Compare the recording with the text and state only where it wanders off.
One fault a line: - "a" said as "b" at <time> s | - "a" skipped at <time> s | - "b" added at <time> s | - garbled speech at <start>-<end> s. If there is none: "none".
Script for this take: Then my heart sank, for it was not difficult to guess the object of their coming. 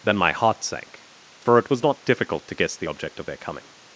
none